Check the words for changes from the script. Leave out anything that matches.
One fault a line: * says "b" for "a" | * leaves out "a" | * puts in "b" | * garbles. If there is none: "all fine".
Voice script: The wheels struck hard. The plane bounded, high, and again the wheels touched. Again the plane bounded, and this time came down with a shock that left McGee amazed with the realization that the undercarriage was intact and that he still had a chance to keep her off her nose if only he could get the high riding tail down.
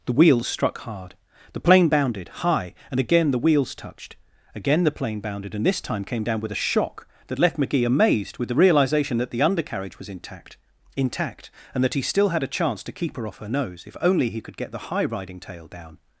* puts in "intact"